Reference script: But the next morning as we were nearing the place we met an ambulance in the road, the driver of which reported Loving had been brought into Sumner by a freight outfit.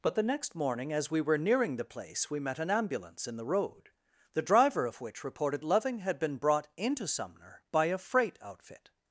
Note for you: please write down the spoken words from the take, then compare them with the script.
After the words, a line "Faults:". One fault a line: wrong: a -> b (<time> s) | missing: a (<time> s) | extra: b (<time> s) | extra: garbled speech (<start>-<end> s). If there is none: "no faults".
But the next morning as we were nearing the place we met an ambulance in the road, the driver of which reported Loving had been brought into Sumner by a freight outfit.
Faults:
no faults